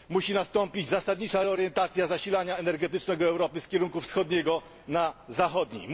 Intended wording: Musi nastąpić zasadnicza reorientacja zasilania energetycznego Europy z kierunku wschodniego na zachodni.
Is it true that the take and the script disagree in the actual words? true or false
false